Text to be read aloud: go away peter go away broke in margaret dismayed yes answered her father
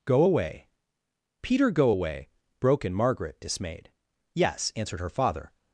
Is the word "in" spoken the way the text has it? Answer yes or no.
yes